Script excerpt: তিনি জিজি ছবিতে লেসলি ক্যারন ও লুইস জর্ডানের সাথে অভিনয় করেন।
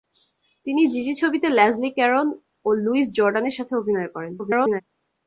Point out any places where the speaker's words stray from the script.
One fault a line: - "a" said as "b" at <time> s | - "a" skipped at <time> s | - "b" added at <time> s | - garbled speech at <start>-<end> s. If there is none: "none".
- garbled speech at 4.4-4.8 s